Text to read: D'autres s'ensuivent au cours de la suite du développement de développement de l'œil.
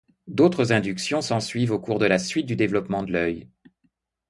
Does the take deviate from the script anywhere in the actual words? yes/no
yes